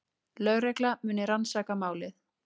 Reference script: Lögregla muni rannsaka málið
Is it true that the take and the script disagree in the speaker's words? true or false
false